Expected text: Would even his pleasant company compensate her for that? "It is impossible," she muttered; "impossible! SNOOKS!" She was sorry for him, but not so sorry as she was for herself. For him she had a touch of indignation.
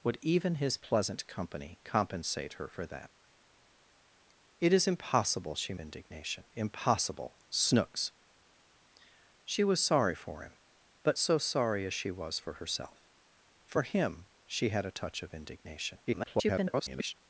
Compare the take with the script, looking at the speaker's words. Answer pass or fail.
fail